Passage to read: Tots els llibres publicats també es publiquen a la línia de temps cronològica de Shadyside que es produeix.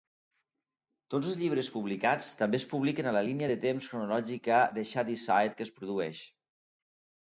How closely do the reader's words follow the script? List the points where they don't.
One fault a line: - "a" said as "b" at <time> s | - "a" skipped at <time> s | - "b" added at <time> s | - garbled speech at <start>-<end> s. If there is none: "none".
none